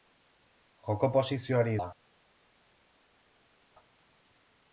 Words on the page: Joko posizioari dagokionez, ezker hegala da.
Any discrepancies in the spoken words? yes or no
yes